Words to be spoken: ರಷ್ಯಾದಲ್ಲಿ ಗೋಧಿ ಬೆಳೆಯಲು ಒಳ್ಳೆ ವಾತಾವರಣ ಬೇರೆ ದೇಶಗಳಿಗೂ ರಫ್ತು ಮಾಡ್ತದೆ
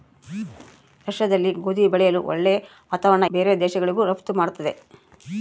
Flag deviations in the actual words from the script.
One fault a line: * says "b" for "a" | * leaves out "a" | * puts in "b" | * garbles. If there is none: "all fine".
all fine